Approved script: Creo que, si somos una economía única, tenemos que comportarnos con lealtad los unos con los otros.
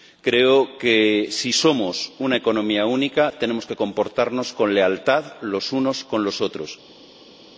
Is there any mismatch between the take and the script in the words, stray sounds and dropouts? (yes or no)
no